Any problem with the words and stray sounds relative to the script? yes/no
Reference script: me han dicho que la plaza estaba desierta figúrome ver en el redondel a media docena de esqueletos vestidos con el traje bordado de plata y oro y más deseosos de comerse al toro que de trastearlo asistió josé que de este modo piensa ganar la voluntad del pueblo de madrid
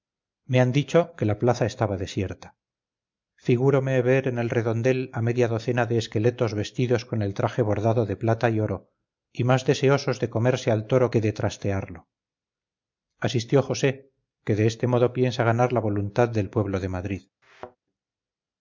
yes